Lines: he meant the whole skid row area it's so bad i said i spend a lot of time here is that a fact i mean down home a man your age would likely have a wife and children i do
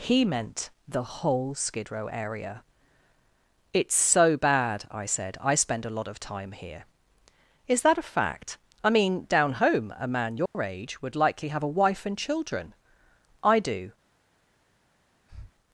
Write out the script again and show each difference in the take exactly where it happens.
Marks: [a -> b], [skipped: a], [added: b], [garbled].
he meant the whole skid row area it's so bad i said i spend a lot of time here is that a fact i mean down home a man your age would likely have a wife and children i do